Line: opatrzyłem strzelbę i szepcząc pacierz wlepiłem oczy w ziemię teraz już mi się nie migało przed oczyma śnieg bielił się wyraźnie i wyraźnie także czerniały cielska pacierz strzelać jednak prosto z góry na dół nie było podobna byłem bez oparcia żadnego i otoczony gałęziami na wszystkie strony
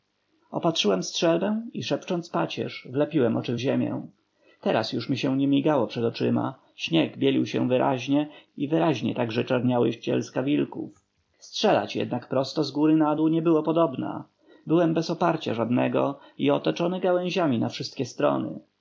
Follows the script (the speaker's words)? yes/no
no